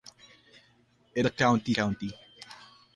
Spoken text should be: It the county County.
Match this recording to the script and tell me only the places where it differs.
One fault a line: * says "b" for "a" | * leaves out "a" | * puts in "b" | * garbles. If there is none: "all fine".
all fine